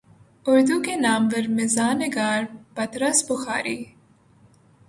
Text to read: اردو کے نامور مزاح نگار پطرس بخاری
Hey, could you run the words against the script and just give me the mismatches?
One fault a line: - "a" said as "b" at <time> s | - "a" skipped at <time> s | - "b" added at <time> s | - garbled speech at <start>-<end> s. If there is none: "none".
none